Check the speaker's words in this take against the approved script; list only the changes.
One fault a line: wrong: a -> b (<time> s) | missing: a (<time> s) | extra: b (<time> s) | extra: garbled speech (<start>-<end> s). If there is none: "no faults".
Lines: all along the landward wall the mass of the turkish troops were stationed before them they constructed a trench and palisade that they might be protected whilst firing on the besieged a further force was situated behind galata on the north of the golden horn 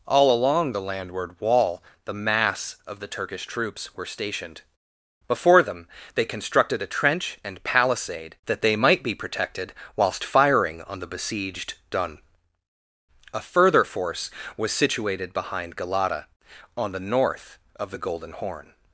extra: dun (11.9 s)